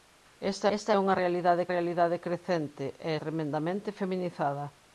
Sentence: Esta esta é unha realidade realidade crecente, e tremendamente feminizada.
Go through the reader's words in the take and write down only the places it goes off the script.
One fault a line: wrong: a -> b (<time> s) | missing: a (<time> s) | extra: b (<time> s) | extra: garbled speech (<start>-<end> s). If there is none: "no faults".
no faults